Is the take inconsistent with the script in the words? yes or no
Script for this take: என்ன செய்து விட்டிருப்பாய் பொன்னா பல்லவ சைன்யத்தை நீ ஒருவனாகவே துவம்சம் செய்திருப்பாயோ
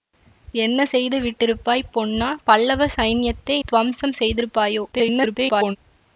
yes